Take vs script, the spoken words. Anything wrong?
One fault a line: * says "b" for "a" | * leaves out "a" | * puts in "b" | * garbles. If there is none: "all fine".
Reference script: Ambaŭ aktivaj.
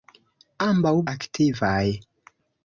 all fine